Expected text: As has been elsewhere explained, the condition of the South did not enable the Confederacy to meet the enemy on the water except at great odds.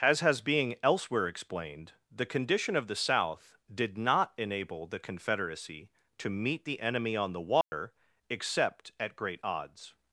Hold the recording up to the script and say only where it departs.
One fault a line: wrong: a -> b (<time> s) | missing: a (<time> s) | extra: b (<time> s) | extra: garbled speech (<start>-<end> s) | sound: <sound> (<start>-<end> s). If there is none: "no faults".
wrong: been -> being (0.4 s)
sound: dropout (7.6-7.7 s)